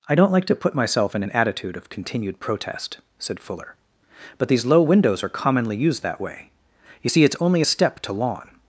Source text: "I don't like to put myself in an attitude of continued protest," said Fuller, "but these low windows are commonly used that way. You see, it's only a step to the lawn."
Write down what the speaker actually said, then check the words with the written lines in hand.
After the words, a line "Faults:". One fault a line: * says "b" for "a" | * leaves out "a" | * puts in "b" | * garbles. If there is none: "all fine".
"I don't like to put myself in an attitude of continued protest," said Fuller, "but these low windows are commonly used that way. You see, it's only a step to lawn."
Faults:
* leaves out "the"